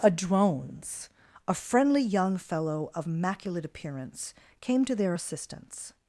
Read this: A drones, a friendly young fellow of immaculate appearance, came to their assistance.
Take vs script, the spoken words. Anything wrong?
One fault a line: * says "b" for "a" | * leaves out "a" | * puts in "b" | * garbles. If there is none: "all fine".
all fine